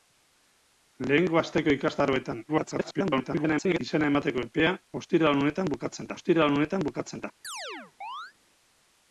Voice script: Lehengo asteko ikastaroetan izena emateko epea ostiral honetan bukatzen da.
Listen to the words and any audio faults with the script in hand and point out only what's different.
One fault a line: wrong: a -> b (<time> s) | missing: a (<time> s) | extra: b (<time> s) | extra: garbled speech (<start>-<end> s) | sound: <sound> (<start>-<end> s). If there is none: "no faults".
extra: garbled speech (2.5-3.8 s)
extra: ostiral honetan bukatzen (6.2 s)
sound: chirp (7.4-8.3 s)